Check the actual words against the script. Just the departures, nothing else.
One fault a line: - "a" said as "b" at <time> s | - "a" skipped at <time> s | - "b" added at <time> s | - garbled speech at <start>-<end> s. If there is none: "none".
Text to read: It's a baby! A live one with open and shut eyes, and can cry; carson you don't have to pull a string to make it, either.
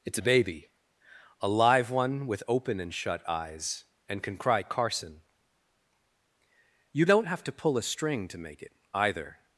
none